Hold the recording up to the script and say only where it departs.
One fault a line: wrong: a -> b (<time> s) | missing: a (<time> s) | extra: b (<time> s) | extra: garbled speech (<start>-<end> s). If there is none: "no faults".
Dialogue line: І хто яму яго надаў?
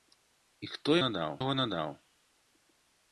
wrong: яму -> надаў (1.1 s)